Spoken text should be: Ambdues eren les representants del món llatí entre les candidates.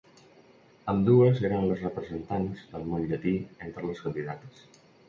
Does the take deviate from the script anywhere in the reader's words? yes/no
no